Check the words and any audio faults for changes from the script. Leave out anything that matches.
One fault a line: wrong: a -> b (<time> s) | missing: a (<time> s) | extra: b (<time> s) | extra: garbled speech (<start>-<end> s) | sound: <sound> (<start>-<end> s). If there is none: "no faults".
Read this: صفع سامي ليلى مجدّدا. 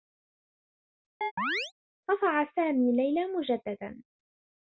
sound: chirp (1.2-1.7 s)